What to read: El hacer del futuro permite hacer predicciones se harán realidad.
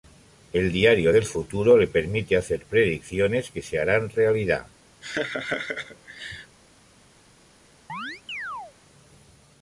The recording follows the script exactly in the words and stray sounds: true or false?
false